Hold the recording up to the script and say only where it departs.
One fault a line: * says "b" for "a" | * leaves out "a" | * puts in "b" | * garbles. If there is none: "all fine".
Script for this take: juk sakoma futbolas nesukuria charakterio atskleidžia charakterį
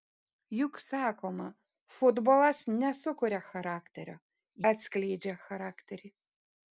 all fine